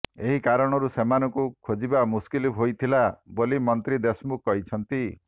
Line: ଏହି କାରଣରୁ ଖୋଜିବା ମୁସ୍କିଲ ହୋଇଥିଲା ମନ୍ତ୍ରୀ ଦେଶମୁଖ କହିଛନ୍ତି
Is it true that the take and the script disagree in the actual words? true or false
true